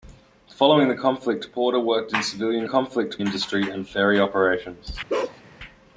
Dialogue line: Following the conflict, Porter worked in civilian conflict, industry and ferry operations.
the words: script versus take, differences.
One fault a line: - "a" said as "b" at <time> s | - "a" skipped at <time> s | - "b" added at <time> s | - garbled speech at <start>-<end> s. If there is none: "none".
none